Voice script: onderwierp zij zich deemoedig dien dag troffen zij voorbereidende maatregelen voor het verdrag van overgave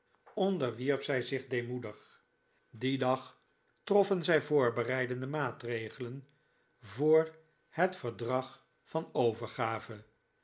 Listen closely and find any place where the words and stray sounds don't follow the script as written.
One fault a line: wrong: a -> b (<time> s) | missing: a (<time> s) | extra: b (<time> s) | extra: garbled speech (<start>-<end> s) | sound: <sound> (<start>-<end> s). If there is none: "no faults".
no faults